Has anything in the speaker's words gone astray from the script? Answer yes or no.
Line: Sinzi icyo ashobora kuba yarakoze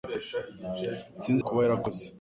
yes